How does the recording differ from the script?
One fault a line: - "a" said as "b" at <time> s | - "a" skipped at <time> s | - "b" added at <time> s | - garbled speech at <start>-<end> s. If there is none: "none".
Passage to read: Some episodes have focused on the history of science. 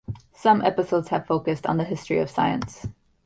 none